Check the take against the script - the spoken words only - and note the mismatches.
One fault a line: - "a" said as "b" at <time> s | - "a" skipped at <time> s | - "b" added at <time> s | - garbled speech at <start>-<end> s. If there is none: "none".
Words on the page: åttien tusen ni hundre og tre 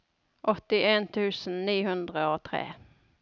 none